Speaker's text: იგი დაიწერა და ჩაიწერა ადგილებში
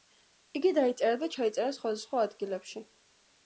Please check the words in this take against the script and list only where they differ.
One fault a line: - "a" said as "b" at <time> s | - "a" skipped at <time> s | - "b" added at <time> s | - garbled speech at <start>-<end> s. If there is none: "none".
- "სხვადასხვა" added at 1.8 s